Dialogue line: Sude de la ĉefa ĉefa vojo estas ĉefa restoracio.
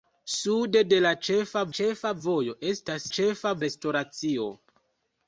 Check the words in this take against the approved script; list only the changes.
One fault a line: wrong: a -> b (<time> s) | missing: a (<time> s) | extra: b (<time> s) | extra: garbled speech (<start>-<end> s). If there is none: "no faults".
no faults